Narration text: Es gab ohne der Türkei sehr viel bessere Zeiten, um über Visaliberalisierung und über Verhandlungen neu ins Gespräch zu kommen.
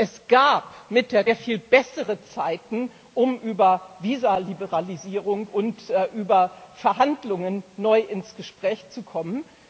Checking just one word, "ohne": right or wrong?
wrong